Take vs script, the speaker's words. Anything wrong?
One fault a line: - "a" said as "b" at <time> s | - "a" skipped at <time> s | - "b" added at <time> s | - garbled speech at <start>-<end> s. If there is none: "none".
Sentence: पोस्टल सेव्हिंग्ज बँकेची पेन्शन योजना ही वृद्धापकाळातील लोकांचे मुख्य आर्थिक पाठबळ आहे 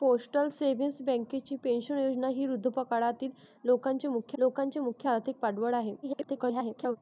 - "लोकांचे मुख्य" added at 4.4 s
- garbled speech at 6.0-7.0 s